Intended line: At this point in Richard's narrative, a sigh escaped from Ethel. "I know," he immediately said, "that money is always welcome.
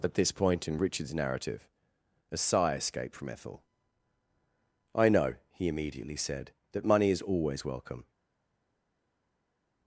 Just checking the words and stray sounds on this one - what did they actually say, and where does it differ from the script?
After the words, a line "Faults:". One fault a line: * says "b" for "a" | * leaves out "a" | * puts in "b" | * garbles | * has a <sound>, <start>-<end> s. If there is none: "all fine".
At this point in Richard's narrative, a sigh escaped from Ethel. "I know," he immediately said, "that money is always welcome.
Faults:
all fine